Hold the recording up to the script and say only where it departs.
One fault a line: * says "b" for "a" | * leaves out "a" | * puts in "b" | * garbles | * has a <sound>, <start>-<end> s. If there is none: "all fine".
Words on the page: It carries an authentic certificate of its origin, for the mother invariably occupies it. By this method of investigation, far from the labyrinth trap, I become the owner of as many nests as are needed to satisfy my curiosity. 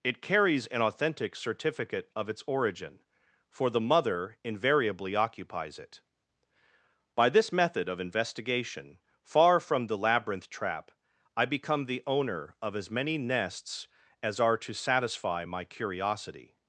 * leaves out "needed"